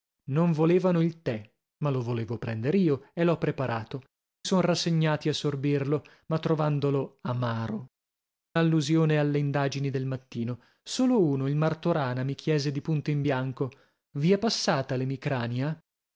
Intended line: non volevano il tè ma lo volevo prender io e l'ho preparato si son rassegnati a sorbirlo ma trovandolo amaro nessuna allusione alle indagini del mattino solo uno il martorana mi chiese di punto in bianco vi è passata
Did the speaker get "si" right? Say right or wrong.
wrong